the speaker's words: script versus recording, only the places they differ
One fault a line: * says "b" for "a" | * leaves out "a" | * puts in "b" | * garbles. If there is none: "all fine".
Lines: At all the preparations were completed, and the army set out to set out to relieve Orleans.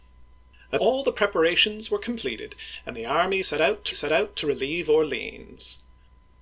all fine